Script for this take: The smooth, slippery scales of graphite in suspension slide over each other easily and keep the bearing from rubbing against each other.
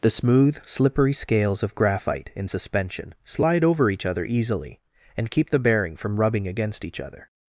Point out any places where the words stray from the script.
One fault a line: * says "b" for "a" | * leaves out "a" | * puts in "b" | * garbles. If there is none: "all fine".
all fine